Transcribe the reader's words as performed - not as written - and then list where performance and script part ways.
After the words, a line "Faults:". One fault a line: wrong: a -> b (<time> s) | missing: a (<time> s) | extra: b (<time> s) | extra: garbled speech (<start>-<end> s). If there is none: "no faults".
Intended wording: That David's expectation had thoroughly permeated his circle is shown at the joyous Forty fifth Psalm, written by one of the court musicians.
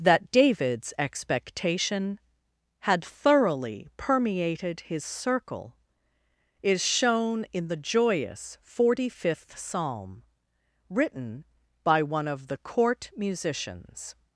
That David's expectation had thoroughly permeated his circle is shown in the joyous Forty fifth Psalm, written by one of the court musicians.
Faults:
wrong: at -> in (7.5 s)